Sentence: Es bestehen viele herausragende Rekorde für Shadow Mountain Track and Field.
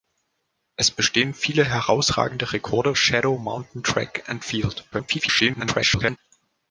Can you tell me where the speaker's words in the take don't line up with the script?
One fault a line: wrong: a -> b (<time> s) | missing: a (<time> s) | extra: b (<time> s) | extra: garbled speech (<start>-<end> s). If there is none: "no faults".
missing: für (3.0 s)
extra: garbled speech (4.9-6.2 s)